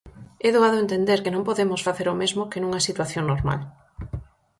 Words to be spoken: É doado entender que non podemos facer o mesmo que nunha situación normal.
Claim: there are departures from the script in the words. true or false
false